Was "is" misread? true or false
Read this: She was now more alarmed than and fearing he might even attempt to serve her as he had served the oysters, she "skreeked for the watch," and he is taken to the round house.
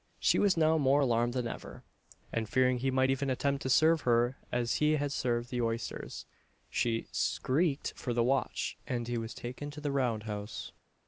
true